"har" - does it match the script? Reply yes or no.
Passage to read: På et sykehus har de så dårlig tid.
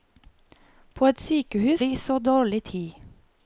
no